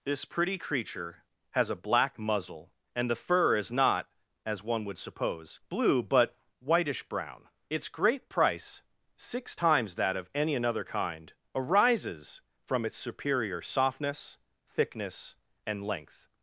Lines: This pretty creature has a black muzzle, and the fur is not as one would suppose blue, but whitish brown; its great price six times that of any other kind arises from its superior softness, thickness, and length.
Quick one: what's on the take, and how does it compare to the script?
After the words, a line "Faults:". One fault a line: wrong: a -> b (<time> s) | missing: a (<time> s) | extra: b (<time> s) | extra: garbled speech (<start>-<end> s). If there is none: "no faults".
This pretty creature has a black muzzle, and the fur is not as one would suppose blue, but whitish brown; its great price six times that of any another kind arises from its superior softness, thickness, and length.
Faults:
wrong: other -> another (10.5 s)